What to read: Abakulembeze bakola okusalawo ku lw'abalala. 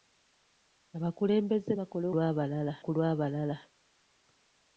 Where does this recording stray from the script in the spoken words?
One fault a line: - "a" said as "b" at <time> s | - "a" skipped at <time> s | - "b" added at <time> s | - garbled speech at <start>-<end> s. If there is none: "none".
- "okusalawo" said as "lw'abalala" at 2.1 s